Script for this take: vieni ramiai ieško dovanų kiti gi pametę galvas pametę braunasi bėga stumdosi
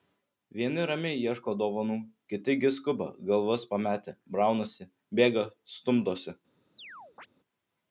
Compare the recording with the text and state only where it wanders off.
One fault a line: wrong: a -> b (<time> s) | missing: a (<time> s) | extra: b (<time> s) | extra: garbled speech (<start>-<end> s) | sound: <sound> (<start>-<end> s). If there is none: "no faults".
wrong: pametę -> skuba (2.8 s)
sound: chirp (6.8-7.3 s)